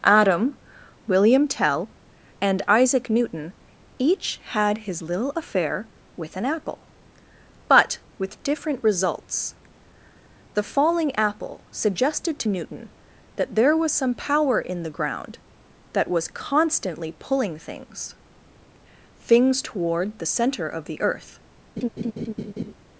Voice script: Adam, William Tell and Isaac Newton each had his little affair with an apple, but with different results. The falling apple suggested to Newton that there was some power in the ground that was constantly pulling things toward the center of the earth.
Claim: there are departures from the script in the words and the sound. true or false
true